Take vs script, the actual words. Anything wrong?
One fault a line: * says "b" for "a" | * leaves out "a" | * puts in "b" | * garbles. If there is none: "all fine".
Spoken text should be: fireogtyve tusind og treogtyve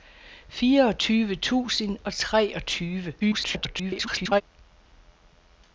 * garbles